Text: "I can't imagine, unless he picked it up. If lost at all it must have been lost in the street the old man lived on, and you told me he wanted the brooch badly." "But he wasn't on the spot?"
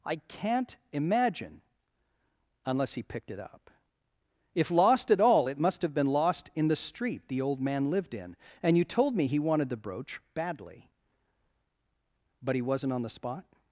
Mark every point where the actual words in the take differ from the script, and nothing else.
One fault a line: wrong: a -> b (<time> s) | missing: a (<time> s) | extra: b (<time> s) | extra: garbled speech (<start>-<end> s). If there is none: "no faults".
wrong: on -> in (8.1 s)